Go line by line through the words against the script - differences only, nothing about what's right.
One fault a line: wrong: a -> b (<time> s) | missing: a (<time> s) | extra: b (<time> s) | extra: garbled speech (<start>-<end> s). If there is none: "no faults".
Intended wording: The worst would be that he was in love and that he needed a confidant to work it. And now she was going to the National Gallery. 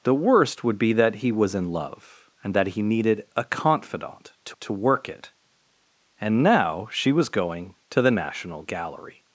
extra: to (4.6 s)